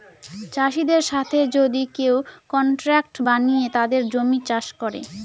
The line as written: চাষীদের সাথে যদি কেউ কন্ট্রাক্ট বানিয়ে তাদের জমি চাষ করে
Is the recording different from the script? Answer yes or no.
no